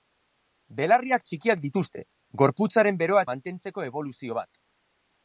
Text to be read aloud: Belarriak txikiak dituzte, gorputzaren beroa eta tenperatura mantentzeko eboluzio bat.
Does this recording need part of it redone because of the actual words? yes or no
yes